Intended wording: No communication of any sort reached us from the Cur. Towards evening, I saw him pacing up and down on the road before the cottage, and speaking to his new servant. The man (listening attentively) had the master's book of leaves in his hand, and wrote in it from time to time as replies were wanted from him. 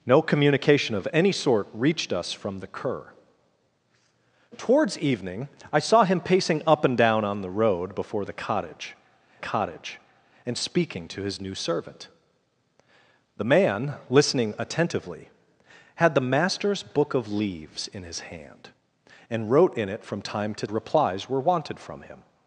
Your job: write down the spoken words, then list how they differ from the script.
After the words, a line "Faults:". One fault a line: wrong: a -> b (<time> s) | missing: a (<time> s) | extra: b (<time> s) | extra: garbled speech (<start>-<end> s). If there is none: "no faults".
No communication of any sort reached us from the Cur. Towards evening, I saw him pacing up and down on the road before the cottage cottage, and speaking to his new servant. The man (listening attentively) had the master's book of leaves in his hand, and wrote in it from time to replies were wanted from him.
Faults:
extra: cottage (9.4 s)
missing: time as (20.7 s)